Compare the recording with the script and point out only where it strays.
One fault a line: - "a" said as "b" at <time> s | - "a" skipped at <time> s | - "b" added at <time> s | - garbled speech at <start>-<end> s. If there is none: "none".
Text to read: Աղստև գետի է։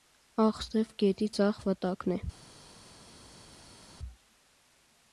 - "ձախ վտակն" added at 1.4 s